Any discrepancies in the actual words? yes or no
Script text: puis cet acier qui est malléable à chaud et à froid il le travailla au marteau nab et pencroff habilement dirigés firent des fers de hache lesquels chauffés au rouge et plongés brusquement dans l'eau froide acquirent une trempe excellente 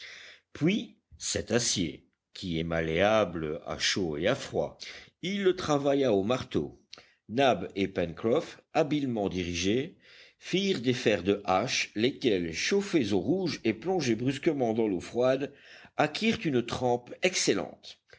no